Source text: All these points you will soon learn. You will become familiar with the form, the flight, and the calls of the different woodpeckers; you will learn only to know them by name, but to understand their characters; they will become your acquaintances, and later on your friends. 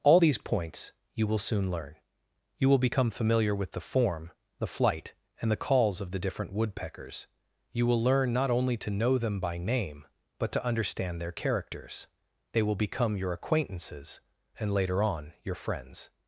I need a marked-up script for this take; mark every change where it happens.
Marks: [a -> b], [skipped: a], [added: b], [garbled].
All these points you will soon learn. You will become familiar with the form, the flight, and the calls of the different woodpeckers; you will learn [added: not] only to know them by name, but to understand their characters; they will become your acquaintances, and later on your friends.